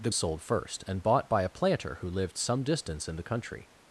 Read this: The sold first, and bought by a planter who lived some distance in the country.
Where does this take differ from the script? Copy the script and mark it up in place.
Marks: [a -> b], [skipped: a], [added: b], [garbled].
The sold first, and bought by a planter who lived some distance in the country.